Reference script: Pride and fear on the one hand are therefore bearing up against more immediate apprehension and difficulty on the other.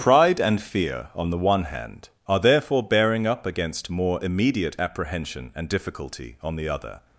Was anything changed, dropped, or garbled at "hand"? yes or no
no